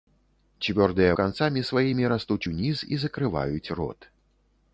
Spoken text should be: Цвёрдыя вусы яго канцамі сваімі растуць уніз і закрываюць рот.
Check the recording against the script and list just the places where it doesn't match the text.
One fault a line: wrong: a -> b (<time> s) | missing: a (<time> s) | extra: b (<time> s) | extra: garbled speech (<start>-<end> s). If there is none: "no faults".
missing: вусы яго (1.1 s)